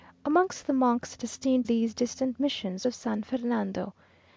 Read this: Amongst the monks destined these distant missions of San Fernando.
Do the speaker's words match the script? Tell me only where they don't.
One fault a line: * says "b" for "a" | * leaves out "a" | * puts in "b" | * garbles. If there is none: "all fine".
all fine